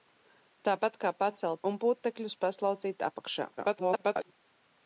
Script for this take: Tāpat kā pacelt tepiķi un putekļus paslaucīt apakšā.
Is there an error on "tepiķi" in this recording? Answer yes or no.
yes